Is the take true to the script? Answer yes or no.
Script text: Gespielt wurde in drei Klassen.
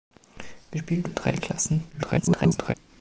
no